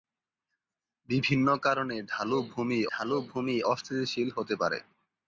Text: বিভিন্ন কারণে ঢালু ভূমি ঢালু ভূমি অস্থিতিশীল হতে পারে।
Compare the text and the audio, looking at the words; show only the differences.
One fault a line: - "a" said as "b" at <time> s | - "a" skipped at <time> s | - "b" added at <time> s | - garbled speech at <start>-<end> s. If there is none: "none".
none